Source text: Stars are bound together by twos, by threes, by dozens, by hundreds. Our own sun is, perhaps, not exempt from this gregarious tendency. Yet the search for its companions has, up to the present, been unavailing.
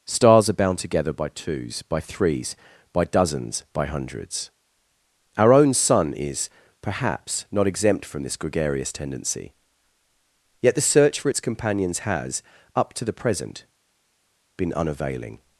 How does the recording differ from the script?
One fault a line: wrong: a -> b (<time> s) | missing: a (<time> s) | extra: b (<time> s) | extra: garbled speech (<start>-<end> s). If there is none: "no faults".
no faults